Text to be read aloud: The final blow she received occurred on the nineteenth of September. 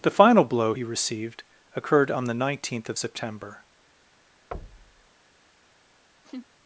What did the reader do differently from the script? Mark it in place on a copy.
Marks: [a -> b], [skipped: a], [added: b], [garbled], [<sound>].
The final blow [she -> he] received occurred on the nineteenth of September. [thud] [laugh]